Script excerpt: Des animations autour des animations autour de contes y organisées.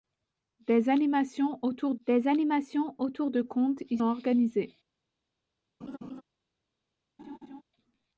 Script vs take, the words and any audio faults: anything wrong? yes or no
yes